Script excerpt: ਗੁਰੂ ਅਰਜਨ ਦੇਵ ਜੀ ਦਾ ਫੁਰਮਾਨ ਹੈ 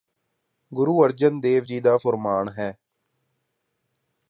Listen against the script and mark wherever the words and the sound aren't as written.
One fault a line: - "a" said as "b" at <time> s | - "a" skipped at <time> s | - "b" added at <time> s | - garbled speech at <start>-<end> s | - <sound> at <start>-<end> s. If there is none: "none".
none